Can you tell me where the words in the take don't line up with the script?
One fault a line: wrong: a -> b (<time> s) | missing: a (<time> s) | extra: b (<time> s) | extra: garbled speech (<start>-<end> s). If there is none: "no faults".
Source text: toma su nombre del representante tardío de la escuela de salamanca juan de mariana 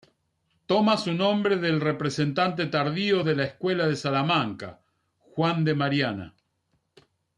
no faults